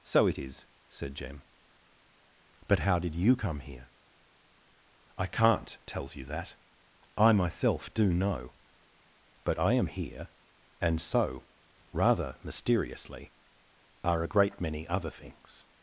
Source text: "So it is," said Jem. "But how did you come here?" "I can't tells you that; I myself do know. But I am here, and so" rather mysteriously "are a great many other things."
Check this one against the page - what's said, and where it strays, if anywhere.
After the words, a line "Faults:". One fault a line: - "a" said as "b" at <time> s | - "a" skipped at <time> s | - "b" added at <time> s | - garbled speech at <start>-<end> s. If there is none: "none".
"So it is," said Jem. "But how did you come here?" "I can't tells you that; I myself do know. But I am here, and so" rather mysteriously "are a great many other things."
Faults:
none